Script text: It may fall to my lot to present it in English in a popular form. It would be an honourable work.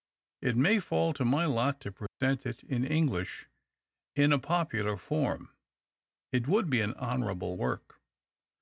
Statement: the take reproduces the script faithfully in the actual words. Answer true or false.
true